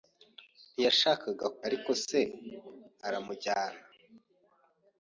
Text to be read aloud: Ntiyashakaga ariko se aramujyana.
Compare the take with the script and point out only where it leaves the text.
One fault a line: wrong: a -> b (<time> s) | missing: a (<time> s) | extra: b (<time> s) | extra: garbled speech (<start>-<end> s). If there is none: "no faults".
no faults